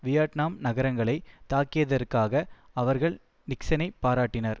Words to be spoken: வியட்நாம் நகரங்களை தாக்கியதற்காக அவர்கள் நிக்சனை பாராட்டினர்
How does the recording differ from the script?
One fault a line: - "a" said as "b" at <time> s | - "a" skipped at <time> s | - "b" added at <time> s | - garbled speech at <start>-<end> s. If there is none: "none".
none